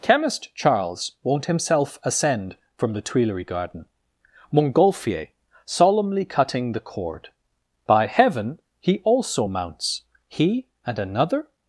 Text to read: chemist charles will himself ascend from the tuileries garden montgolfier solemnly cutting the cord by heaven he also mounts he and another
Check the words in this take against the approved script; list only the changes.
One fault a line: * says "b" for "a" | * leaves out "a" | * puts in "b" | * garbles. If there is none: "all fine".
* says "won't" for "will"